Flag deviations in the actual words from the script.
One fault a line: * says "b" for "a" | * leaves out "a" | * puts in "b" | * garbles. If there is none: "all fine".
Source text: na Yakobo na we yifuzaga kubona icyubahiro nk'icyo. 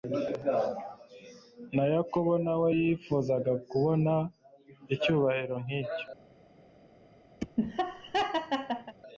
all fine